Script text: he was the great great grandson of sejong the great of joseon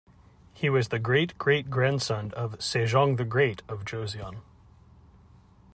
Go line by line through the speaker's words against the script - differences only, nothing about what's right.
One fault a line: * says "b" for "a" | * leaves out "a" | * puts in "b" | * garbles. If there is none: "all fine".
all fine